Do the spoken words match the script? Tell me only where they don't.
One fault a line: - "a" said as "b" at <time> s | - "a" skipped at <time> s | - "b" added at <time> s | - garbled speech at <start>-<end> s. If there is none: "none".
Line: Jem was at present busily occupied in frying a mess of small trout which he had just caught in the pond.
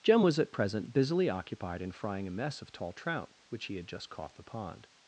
- "small" said as "tall" at 2.7 s
- "in" skipped at 4.3 s